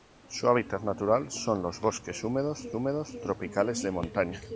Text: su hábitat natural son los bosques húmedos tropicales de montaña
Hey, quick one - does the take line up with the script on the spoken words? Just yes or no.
no